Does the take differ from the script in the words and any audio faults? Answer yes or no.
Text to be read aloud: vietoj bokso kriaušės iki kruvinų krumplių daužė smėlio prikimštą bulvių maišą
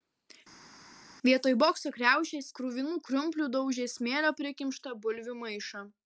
yes